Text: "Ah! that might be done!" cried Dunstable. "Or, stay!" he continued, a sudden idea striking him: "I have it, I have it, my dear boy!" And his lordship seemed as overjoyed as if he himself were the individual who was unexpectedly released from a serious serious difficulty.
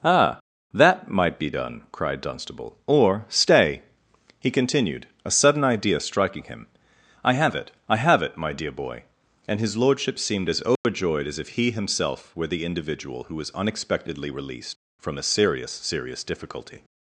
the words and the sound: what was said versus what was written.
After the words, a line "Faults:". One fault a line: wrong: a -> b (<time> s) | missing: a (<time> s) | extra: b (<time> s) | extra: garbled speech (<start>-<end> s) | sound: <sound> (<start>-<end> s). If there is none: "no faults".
"Ah! that might be done!" cried Dunstable. "Or, stay!" he continued, a sudden idea striking him: "I have it, I have it, my dear boy!" And his lordship seemed as overjoyed as if he himself were the individual who was unexpectedly released from a serious serious difficulty.
Faults:
sound: dropout (10.8-10.8 s)